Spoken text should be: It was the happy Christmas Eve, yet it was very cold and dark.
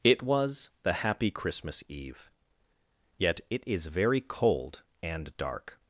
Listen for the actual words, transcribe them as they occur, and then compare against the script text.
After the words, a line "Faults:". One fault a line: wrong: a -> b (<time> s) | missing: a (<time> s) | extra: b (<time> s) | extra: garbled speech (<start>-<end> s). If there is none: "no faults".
It was the happy Christmas Eve, yet it is very cold and dark.
Faults:
wrong: was -> is (3.7 s)